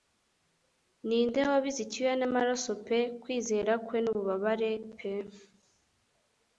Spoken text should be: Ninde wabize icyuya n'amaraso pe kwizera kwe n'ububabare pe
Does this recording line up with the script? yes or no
yes